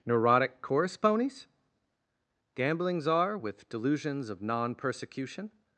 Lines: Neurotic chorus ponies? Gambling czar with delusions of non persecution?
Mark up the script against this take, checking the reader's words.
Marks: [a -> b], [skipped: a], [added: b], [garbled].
Neurotic chorus ponies? Gambling czar with delusions of non persecution?